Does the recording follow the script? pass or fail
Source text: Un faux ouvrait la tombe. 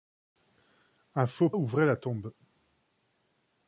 pass